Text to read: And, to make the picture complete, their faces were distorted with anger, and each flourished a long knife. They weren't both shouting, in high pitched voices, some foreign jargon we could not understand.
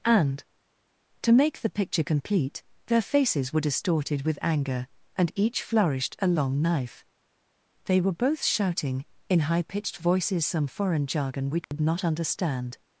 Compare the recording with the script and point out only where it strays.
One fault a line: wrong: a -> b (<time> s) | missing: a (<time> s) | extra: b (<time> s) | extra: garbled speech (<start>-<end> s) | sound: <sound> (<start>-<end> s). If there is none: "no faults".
wrong: weren't -> were (8.0 s)
sound: dropout (11.6-11.7 s)